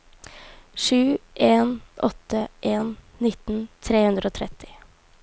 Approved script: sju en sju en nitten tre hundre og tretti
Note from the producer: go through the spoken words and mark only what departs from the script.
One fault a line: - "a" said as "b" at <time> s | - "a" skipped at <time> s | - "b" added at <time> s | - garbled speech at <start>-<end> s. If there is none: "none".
- "sju" said as "åtte" at 1.9 s